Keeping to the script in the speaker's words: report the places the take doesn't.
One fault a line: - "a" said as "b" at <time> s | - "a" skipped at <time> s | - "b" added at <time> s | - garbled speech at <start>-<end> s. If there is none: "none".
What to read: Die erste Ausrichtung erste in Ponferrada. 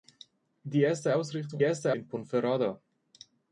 none